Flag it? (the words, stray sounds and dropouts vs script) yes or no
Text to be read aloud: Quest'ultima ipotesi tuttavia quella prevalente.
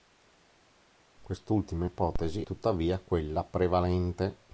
no